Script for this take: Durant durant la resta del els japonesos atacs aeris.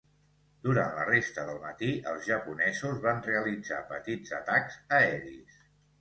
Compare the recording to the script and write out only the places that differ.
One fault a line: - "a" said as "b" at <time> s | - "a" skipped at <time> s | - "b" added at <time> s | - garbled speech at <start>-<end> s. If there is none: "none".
- "durant" skipped at 0.9 s
- "matí" added at 1.6 s
- "van realitzar petits" added at 3.1 s